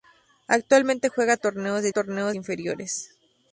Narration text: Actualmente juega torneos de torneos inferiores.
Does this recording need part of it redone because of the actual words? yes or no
no